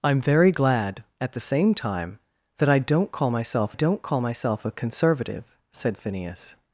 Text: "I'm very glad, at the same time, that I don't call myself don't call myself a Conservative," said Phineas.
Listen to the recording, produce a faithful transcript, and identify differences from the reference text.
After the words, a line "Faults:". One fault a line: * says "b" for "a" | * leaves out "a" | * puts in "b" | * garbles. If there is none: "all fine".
"I'm very glad, at the same time, that I don't call myself don't call myself a Conservative," said Phineas.
Faults:
all fine